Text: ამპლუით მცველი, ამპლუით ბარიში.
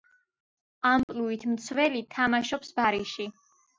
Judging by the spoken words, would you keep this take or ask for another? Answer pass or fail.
fail